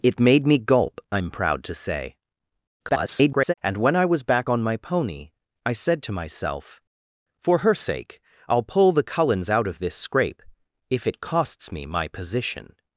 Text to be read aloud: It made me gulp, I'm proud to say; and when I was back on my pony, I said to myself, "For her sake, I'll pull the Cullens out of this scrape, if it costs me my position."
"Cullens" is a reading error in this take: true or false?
false